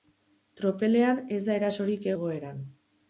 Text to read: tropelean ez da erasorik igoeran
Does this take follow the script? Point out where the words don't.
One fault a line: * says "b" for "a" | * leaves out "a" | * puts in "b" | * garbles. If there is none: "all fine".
all fine